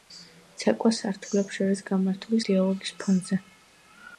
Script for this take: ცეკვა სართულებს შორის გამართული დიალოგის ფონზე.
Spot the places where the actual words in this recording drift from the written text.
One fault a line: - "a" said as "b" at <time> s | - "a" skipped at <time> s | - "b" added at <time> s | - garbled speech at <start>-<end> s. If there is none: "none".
none